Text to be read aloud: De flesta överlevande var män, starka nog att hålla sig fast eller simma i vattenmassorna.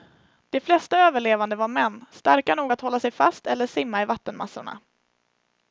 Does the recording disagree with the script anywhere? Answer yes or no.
no